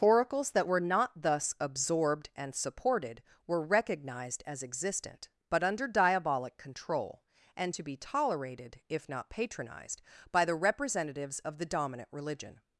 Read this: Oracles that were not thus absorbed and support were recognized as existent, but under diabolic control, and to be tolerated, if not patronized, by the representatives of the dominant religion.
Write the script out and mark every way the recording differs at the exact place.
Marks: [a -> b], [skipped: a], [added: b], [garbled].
Oracles that were not thus absorbed and [support -> supported] were recognized as existent, but under diabolic control, and to be tolerated, if not patronized, by the representatives of the dominant religion.